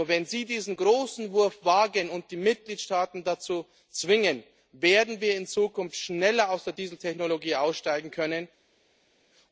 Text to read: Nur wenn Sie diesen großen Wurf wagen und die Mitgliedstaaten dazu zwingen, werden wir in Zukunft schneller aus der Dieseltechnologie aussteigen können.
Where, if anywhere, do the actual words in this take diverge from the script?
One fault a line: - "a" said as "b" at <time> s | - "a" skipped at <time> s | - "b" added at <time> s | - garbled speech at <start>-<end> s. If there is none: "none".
none